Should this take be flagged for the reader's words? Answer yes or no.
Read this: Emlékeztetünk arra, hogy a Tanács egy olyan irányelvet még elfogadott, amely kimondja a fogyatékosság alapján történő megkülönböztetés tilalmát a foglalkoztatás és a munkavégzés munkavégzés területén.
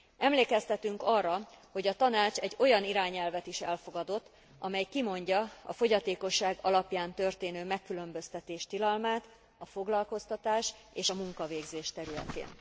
yes